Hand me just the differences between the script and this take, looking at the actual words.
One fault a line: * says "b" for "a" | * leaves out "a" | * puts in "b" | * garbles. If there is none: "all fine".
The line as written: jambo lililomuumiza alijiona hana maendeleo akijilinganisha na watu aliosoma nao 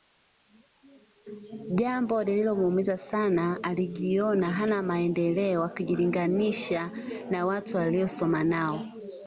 * puts in "sana"